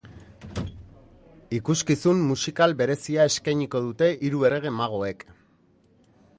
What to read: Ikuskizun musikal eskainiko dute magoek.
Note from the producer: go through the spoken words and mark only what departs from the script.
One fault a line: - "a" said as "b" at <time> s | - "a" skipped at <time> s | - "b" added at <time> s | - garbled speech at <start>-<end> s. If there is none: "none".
- "berezia" added at 2.8 s
- "hiru errege" added at 4.3 s